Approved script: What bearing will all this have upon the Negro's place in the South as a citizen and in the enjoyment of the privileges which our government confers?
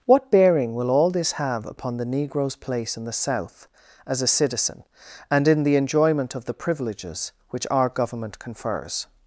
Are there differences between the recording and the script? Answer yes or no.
no